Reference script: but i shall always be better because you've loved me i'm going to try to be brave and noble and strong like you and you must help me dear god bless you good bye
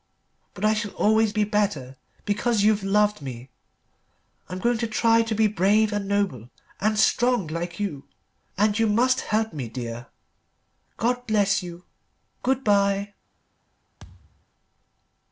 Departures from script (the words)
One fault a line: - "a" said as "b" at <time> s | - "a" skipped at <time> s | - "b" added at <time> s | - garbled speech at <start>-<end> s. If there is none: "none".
none